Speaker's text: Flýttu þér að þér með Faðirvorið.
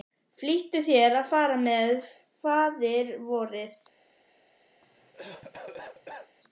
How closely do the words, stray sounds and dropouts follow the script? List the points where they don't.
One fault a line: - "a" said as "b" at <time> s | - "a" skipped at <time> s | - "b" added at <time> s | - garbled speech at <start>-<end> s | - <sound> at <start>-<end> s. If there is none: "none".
- "þér" said as "fara" at 1.3 s
- cough at 4.8-6.4 s